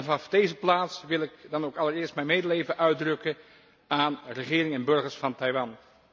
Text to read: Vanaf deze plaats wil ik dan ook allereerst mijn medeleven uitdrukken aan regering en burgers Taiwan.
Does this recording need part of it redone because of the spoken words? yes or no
yes